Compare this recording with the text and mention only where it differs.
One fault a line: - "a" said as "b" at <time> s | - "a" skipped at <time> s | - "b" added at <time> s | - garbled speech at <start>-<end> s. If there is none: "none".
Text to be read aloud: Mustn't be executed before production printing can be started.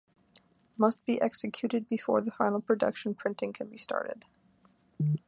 - "Mustn't" said as "Must" at 0.8 s
- "the final" added at 2.2 s